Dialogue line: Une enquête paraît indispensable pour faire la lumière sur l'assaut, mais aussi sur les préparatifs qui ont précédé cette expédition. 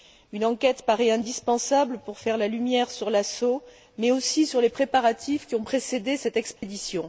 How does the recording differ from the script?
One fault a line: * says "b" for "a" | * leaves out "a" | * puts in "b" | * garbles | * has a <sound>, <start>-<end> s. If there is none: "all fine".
* has a dropout, 6.6-6.6 s